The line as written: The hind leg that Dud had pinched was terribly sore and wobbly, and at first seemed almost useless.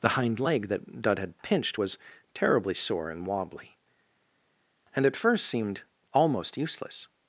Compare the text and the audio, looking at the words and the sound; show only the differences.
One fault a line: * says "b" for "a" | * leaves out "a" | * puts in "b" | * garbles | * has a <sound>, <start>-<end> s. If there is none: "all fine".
all fine